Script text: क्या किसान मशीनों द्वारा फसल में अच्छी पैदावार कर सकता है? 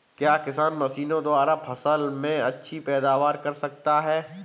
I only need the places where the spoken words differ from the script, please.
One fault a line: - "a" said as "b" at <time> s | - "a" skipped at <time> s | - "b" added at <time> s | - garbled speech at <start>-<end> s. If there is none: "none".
none